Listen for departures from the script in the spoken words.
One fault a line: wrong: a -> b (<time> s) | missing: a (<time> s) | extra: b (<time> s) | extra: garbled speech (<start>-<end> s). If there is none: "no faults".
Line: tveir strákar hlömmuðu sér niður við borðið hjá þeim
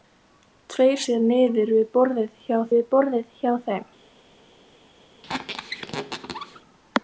wrong: strákar hlömmuðu sér niður -> sér niður við borðið hjá (1.1 s)